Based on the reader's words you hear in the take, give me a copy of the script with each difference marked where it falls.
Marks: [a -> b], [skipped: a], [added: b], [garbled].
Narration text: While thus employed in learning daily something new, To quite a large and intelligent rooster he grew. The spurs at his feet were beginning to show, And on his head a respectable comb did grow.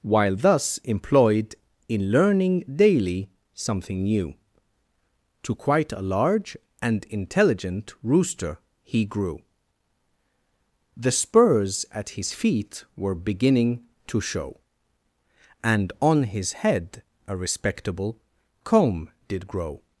While thus employed in learning daily something new, To quite a large and intelligent rooster he grew. The spurs at his feet were beginning to show, And on his head a respectable comb did grow.